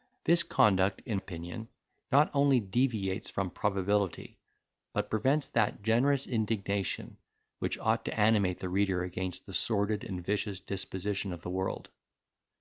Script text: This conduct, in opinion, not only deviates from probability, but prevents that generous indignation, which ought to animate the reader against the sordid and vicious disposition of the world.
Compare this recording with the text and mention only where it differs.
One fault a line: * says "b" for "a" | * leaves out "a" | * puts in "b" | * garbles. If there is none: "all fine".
all fine